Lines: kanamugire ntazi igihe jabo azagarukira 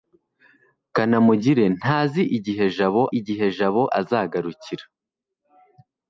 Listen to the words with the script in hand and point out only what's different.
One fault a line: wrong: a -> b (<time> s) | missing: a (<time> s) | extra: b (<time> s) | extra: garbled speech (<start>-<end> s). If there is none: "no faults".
extra: igihe jabo (3.2 s)